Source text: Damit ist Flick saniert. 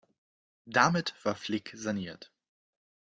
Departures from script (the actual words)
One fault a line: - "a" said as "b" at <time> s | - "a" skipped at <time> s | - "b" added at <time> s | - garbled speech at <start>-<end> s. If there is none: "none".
- "ist" said as "war" at 1.2 s